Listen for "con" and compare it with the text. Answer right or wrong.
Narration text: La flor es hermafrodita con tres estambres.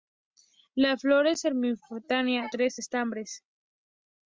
wrong